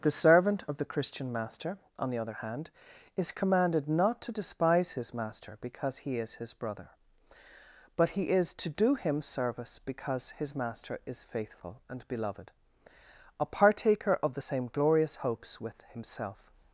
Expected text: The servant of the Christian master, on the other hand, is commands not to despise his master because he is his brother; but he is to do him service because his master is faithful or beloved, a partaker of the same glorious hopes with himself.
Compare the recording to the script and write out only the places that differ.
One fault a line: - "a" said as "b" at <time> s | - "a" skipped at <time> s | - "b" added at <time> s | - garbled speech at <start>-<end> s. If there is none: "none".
- "commands" said as "commanded" at 3.3 s
- "or" said as "and" at 11.9 s